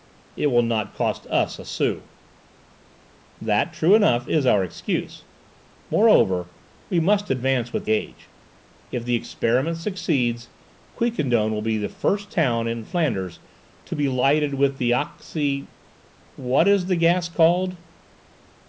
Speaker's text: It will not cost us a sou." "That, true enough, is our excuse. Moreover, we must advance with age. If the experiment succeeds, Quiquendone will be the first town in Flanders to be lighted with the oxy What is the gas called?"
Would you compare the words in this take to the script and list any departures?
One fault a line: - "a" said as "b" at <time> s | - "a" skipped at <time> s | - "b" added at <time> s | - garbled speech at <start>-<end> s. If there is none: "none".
none